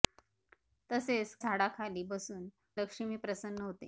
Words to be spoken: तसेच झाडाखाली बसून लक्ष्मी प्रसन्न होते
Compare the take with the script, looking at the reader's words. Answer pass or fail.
pass